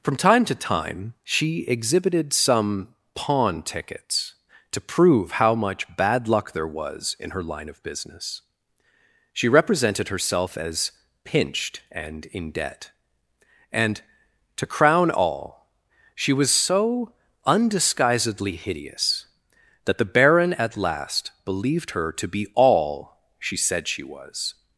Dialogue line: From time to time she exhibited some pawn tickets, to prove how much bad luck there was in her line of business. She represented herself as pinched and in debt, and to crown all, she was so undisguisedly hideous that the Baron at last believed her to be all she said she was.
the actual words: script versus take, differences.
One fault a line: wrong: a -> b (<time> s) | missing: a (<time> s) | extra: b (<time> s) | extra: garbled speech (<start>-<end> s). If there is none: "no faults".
no faults